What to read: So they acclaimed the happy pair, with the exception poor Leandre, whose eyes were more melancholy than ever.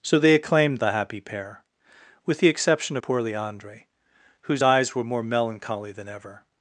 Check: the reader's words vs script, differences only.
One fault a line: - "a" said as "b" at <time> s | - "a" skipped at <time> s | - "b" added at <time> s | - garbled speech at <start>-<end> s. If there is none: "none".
none